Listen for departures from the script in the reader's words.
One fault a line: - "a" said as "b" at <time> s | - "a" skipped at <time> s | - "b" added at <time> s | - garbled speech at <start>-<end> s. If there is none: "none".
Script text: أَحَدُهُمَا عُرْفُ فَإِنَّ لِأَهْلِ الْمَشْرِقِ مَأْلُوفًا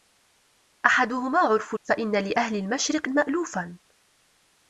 none